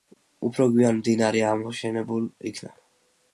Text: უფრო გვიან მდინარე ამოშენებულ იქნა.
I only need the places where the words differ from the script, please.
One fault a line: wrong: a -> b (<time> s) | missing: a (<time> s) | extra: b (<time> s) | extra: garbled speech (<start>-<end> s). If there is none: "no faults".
no faults